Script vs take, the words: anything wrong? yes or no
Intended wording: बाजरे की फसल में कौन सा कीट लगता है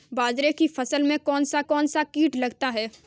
yes